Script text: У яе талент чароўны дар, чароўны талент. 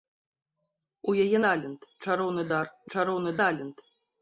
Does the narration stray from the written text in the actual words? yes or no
no